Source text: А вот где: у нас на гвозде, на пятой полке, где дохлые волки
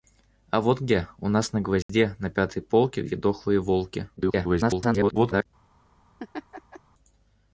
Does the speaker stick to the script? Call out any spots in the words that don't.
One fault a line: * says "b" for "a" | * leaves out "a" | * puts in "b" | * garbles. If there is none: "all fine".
* garbles